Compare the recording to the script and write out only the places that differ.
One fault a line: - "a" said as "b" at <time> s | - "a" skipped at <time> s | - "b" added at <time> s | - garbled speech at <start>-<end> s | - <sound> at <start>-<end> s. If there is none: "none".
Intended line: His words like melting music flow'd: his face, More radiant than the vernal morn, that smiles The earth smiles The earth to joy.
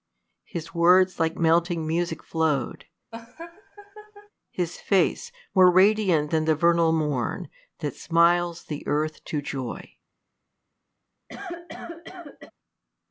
- laugh at 3.1-4.3 s
- "smiles The earth" skipped at 9.2 s
- cough at 11.3-12.5 s